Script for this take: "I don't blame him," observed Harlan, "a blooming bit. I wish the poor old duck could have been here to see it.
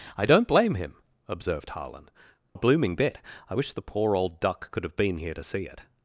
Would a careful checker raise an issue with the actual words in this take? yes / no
no